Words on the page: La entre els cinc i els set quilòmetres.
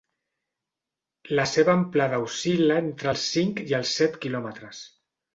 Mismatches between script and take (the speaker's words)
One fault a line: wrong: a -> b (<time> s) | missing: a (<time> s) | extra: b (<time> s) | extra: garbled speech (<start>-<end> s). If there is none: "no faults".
extra: seva amplada oscil·la (1.5 s)